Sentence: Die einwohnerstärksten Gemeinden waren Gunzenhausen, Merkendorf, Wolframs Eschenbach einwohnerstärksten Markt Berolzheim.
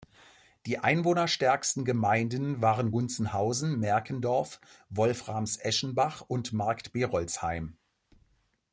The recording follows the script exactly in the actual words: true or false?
false